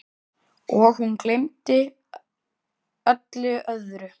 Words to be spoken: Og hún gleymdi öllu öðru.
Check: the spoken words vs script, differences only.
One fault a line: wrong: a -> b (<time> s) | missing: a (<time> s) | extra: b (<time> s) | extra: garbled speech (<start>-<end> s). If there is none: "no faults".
no faults